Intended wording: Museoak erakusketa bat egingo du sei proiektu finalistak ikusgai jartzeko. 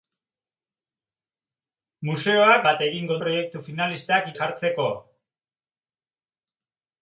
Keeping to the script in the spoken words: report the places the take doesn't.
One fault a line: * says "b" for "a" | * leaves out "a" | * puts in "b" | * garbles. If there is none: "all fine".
* leaves out "erakusketa"
* leaves out "du sei"
* leaves out "ikusgai"